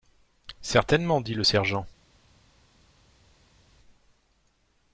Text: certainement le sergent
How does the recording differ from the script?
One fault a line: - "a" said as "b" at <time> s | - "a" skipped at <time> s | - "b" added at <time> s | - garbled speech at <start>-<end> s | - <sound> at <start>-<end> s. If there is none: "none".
- "dit" added at 1.2 s